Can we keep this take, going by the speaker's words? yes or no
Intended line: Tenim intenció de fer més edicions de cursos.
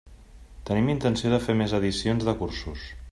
yes